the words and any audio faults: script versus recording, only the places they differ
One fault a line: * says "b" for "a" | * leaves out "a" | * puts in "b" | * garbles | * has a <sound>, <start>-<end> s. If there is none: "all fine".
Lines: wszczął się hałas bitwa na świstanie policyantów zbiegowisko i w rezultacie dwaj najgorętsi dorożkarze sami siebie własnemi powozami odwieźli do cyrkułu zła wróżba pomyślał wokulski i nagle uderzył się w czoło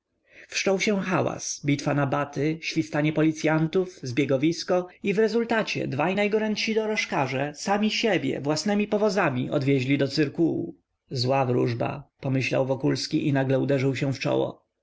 * puts in "baty"